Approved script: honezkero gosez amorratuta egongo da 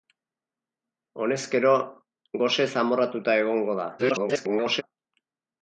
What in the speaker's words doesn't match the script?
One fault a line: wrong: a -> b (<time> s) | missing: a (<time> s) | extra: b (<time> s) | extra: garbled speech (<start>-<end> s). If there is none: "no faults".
extra: garbled speech (4.0-4.8 s)